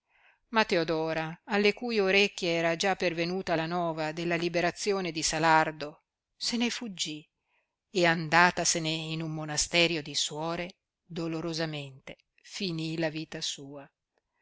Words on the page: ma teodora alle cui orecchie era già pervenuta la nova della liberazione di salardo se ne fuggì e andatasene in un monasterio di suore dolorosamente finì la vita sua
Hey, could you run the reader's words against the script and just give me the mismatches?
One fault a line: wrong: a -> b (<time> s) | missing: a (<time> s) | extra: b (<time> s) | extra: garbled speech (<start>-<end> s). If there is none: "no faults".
no faults